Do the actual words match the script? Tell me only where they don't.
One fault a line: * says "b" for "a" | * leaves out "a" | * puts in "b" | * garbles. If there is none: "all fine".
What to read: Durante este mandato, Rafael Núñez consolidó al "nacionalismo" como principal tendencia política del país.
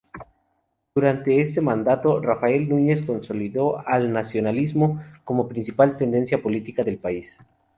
all fine